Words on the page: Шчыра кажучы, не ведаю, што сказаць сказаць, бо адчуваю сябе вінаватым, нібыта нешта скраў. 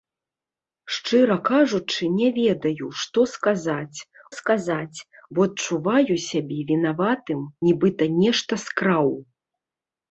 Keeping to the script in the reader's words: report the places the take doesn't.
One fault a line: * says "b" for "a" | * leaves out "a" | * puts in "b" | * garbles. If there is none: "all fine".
all fine